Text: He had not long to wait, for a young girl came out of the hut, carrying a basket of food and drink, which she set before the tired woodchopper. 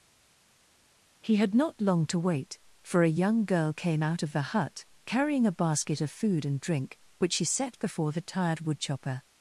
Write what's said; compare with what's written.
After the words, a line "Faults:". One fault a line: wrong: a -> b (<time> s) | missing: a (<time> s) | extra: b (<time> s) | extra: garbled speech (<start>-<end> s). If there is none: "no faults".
He had not long to wait, for a young girl came out of the hut, carrying a basket of food and drink, which she set before the tired woodchopper.
Faults:
no faults